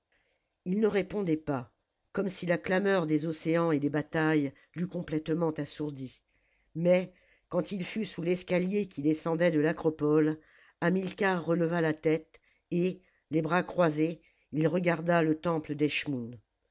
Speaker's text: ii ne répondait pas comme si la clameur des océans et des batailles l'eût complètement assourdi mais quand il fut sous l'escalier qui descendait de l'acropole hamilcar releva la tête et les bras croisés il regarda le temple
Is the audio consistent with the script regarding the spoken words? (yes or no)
yes